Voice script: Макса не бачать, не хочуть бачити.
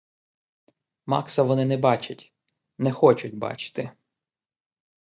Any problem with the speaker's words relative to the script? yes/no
yes